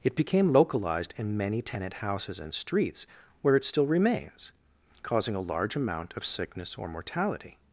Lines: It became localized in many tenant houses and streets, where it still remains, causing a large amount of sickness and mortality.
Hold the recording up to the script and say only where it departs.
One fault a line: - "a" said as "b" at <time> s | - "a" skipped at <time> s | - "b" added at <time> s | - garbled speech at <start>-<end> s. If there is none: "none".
- "and" said as "or" at 6.8 s